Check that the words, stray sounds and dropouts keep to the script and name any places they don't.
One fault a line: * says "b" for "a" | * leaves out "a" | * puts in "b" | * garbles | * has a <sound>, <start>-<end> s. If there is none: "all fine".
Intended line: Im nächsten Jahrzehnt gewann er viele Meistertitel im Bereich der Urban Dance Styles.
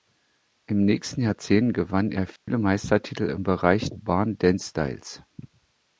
* has a dropout, 2.4-2.5 s
* leaves out "der"